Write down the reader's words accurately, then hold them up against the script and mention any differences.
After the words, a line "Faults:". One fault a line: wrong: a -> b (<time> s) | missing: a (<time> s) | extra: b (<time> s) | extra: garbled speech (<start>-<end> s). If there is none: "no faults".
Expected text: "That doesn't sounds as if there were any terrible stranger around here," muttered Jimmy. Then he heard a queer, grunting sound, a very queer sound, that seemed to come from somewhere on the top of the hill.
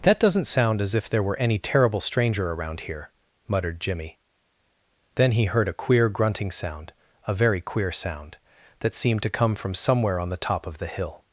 "That doesn't sound as if there were any terrible stranger around here," muttered Jimmy. Then he heard a queer, grunting sound, a very queer sound, that seemed to come from somewhere on the top of the hill.
Faults:
wrong: sounds -> sound (0.5 s)